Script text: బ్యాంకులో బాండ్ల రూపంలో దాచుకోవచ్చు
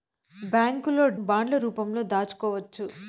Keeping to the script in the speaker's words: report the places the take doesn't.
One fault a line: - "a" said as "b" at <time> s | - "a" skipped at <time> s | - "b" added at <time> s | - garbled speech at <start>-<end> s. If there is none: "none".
none